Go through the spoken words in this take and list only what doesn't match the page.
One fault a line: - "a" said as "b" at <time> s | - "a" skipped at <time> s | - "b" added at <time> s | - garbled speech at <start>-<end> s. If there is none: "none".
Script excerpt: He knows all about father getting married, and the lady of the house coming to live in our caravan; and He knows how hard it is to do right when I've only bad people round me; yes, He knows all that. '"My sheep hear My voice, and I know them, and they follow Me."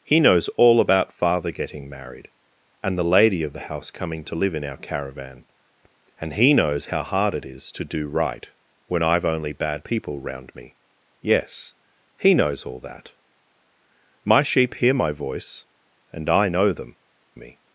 - "and they follow" skipped at 17.0 s